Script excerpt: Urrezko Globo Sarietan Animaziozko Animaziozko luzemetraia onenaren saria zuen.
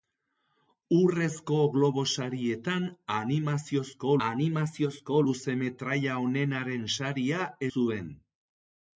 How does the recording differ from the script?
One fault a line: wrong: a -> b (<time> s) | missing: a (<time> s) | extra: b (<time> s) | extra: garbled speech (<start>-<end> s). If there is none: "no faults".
no faults